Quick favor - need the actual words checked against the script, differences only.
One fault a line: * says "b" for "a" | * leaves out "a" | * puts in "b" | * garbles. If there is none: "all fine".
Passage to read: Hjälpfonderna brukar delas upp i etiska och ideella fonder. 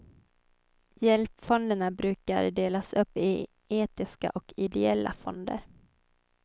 all fine